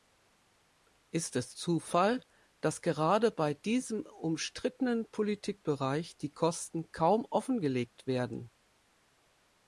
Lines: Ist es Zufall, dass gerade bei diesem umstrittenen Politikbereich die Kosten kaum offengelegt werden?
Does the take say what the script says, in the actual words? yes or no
yes